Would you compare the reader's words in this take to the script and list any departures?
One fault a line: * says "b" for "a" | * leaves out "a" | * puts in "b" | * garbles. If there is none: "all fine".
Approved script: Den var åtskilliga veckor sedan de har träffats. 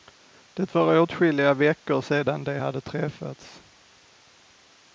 * says "Det" for "Den"
* says "hade" for "har"